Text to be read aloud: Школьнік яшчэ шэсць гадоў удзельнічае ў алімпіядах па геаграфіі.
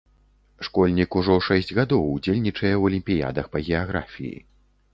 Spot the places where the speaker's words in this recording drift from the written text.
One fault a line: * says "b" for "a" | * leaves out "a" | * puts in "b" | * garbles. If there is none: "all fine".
* says "ужо" for "яшчэ"